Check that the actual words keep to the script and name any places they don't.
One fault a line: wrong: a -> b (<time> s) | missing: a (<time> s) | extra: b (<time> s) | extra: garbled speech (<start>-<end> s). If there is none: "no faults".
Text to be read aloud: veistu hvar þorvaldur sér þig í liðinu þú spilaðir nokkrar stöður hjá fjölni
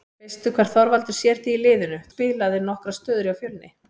missing: þú (2.0 s)